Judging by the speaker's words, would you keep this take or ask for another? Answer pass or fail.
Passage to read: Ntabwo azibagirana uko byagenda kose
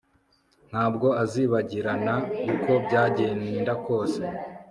pass